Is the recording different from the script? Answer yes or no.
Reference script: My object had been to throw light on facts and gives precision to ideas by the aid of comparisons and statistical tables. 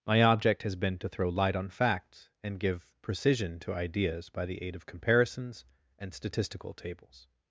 yes